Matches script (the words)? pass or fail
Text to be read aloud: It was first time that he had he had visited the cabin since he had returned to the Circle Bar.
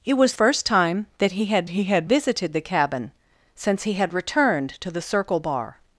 pass